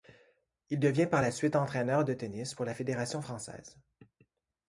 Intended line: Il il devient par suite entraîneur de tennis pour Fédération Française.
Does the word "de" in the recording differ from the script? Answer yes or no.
no